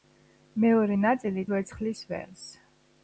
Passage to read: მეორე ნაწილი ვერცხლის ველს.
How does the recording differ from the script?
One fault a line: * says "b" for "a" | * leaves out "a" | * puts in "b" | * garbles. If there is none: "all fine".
all fine